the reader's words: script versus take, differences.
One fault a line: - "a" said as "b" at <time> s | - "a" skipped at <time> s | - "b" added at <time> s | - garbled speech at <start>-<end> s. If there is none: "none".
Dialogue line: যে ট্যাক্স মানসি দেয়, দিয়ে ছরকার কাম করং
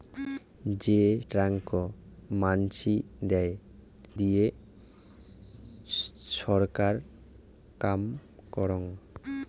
none